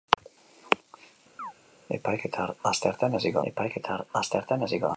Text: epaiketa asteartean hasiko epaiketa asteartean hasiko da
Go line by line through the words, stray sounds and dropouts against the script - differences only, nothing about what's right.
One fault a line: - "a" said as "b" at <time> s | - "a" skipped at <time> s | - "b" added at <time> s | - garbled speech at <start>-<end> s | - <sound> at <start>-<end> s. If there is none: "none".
- chirp at 1.4-1.5 s